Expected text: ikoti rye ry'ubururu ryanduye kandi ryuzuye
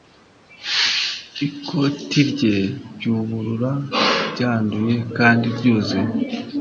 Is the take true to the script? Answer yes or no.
yes